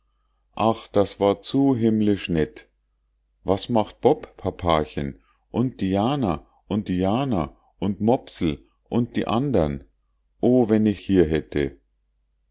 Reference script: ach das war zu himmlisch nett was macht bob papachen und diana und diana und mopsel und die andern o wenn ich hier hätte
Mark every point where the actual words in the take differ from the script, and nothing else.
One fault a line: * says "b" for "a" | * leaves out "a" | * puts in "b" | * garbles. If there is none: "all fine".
all fine